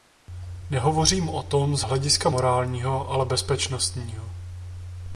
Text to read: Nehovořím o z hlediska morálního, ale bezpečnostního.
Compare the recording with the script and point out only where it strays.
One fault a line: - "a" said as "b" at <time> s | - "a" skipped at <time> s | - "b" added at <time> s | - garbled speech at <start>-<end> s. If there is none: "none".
- "tom" added at 1.4 s